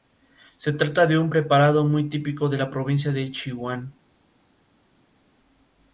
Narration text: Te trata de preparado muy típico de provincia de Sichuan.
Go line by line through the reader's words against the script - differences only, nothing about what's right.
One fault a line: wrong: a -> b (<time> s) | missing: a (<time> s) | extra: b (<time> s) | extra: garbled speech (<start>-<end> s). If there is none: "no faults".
wrong: Te -> Se (0.6 s)
extra: un (1.2 s)
extra: la (2.6 s)